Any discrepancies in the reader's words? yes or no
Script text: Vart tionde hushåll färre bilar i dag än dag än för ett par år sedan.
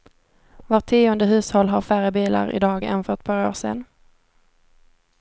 yes